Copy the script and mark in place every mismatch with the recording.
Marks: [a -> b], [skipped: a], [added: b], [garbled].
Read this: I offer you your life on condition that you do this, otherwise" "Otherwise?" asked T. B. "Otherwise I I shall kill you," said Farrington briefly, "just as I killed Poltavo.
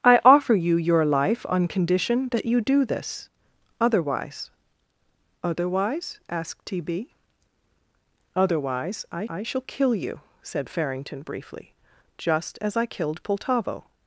I offer you your life on condition that you do this, otherwise" "Otherwise?" asked T. B. "Otherwise I I shall kill you," said Farrington briefly, "just as I killed Poltavo.